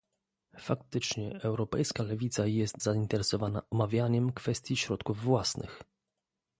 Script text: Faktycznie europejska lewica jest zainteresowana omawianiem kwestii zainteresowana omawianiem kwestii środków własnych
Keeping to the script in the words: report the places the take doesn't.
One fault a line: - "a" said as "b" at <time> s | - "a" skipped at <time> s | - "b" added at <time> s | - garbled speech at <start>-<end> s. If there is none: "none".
- "zainteresowana omawianiem kwestii" skipped at 4.8 s